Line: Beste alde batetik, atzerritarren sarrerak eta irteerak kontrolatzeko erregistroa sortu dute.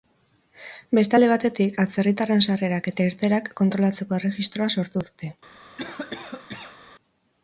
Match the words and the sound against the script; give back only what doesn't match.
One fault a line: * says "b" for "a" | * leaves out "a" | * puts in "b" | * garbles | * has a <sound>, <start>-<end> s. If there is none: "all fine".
* has a cough, 5.8-6.8 s